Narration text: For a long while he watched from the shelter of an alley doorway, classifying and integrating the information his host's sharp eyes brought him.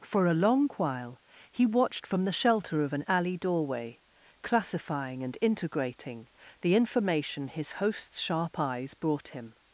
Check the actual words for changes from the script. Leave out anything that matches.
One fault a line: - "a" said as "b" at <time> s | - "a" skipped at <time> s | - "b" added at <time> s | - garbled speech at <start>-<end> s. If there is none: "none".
none